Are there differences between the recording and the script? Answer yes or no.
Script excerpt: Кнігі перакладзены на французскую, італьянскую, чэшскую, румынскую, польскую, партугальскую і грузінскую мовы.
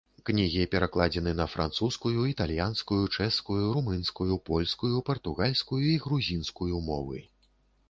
no